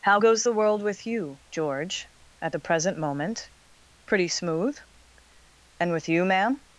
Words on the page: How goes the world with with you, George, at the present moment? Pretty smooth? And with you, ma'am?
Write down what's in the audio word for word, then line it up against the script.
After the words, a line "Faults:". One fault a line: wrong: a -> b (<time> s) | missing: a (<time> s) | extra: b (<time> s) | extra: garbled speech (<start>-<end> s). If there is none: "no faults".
How goes the world with you, George, at the present moment? Pretty smooth? And with you, ma'am?
Faults:
missing: with (1.1 s)